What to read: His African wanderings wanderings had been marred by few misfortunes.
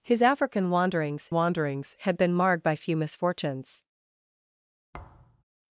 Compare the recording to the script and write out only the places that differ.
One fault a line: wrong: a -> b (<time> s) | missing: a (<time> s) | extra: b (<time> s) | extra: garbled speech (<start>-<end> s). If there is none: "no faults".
no faults